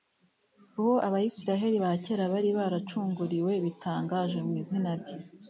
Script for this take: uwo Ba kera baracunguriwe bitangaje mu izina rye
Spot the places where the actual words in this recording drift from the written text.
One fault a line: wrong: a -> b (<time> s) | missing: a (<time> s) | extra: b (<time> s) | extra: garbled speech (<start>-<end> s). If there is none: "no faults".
extra: Abisirayeli (1.1 s)
extra: bari (2.3 s)